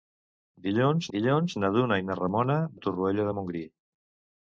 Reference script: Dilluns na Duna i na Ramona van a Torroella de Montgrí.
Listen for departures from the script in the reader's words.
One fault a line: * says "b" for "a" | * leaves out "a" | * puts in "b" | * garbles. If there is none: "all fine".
* puts in "dilluns"
* leaves out "van"